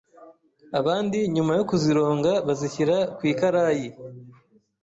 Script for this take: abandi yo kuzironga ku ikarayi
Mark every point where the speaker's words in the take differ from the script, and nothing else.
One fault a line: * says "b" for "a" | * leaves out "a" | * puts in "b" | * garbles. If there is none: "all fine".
* puts in "nyuma"
* puts in "bazishyira"